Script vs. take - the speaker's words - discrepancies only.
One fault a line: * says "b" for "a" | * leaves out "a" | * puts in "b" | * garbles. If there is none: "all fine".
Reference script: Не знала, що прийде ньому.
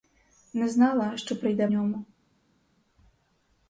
all fine